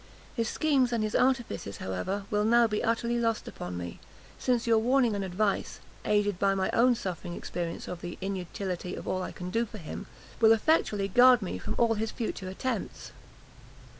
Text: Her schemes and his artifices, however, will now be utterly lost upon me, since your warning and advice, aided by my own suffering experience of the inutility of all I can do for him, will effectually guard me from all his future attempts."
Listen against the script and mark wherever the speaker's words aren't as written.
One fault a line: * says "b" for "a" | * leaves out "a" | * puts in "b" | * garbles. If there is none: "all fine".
* says "His" for "Her"